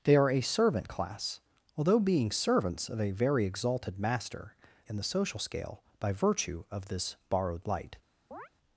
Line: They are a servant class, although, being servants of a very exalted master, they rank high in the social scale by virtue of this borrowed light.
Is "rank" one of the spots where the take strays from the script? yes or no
yes